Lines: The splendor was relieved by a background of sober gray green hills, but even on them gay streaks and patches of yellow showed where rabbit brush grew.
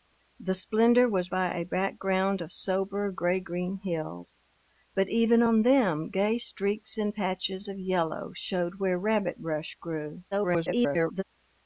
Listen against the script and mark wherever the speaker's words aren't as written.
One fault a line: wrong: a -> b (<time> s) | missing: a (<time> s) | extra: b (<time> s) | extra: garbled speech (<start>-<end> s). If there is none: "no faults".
missing: relieved (1.3 s)
extra: garbled speech (10.3-11.2 s)